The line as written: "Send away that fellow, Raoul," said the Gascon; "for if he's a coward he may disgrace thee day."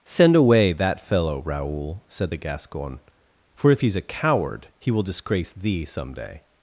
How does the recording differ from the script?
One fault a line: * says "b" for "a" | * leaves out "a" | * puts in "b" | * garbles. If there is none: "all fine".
* says "will" for "may"
* puts in "some"